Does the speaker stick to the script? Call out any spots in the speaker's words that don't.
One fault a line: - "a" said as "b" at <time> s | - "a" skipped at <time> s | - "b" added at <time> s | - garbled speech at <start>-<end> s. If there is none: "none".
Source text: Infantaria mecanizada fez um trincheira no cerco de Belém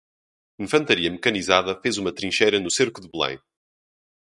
- "um" said as "uma" at 2.0 s